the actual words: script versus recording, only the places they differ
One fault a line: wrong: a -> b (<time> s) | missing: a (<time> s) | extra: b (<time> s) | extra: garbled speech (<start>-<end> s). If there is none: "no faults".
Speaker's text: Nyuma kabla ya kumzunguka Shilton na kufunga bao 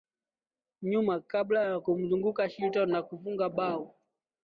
no faults